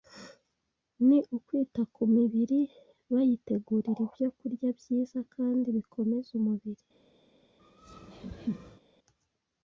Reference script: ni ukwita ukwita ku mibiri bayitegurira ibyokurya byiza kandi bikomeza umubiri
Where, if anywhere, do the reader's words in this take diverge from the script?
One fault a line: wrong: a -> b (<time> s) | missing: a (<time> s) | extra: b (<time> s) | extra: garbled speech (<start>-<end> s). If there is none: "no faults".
missing: ukwita (1.8 s)